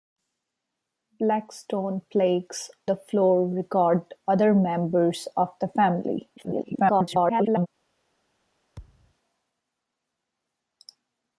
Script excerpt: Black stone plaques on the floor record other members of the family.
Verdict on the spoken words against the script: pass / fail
fail